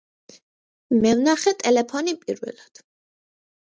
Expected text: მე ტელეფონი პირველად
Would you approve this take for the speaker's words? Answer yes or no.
no